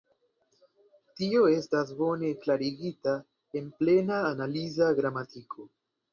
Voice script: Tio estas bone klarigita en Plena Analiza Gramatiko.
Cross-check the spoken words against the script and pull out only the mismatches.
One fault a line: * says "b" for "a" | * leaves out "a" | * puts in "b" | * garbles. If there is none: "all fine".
all fine